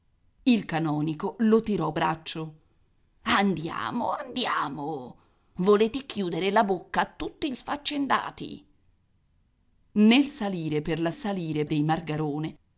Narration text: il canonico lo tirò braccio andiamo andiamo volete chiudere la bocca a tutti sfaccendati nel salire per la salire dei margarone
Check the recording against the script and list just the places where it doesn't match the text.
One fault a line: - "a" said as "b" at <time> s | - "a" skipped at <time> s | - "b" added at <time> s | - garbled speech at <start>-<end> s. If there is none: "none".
none